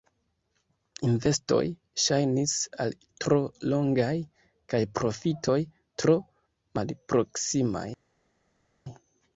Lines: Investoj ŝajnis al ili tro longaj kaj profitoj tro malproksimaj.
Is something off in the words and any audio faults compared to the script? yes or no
yes